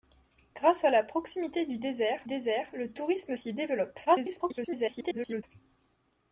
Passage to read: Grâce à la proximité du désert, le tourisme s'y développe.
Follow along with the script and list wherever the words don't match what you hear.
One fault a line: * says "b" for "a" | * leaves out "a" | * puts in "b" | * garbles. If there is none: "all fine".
* puts in "désert"
* garbles